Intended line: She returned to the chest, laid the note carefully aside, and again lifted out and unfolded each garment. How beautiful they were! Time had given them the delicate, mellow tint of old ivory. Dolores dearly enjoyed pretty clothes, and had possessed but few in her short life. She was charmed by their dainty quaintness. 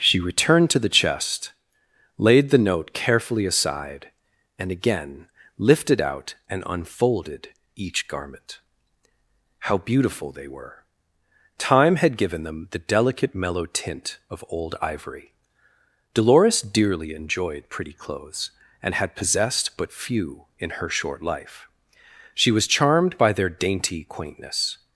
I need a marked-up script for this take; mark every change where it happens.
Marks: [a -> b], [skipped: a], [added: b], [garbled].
She returned to the chest, laid the note carefully aside, and again lifted out and unfolded each garment. How beautiful they were! Time had given them the delicate, mellow tint of old ivory. Dolores dearly enjoyed pretty clothes, and had possessed but few in her short life. She was charmed by their dainty quaintness.